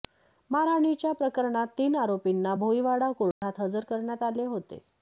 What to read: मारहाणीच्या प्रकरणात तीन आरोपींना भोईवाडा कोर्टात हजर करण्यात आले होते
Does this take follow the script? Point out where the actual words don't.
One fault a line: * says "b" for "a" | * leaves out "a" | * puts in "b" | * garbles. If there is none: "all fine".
all fine